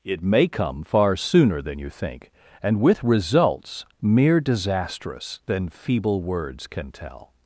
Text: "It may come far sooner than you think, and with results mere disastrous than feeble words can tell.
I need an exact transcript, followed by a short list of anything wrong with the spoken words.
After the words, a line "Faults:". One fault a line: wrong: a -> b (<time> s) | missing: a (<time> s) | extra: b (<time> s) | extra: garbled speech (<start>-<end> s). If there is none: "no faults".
"It may come far sooner than you think, and with results mere disastrous than feeble words can tell.
Faults:
no faults